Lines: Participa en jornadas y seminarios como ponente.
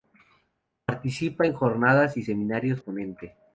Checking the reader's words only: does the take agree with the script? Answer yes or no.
no